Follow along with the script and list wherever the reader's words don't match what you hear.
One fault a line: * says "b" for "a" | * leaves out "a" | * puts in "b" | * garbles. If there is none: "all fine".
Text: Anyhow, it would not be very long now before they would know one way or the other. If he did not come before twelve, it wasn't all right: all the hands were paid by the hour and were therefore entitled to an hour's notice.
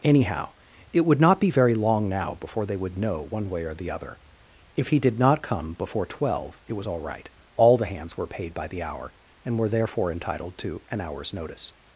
* says "was" for "wasn't"